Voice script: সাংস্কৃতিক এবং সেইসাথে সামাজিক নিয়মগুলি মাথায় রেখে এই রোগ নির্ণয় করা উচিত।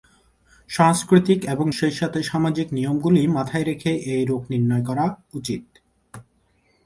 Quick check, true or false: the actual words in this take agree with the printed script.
true